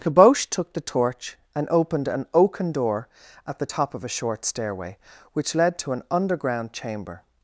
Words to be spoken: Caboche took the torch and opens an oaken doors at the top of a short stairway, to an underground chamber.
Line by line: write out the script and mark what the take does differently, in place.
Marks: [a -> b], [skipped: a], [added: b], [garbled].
Caboche took the torch and [opens -> opened] an oaken [doors -> door] at the top of a short stairway, [added: which led] to an underground chamber.